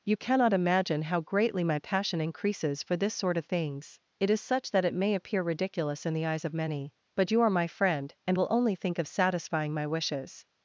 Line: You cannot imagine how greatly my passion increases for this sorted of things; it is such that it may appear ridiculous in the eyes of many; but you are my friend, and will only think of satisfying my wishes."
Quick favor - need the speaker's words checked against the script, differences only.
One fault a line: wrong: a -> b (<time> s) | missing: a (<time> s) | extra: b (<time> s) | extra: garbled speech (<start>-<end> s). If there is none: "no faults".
wrong: sorted -> sort (3.1 s)